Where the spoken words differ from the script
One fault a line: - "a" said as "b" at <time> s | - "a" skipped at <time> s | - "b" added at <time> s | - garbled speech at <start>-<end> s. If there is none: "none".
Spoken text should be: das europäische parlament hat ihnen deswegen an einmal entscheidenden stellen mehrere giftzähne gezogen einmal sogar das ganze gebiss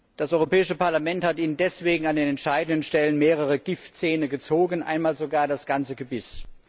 - "einmal" said as "den" at 2.1 s